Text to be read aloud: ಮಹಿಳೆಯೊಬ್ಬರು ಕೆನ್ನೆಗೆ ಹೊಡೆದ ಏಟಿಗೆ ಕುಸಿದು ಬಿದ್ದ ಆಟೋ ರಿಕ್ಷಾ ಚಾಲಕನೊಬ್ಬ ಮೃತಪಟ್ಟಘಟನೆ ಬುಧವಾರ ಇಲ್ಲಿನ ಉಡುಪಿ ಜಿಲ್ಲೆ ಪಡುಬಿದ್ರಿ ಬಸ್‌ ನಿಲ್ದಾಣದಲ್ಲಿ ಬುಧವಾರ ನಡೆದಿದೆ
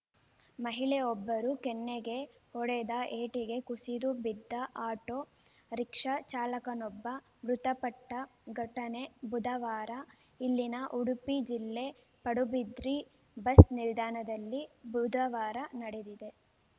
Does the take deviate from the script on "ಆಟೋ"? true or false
false